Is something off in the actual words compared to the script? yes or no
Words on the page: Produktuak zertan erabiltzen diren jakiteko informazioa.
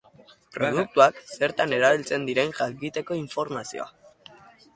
no